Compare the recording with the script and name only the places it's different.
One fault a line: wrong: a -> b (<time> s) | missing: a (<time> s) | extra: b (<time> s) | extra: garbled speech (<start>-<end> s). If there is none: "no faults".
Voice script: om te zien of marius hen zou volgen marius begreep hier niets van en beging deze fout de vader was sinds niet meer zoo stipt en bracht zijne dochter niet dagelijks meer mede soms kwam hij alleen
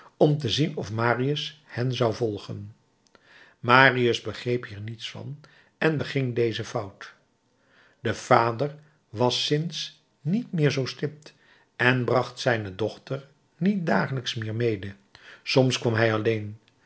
no faults